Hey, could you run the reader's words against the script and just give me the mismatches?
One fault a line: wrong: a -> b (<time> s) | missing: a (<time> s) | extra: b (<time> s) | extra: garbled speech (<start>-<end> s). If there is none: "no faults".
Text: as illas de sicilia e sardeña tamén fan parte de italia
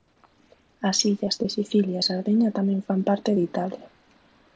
no faults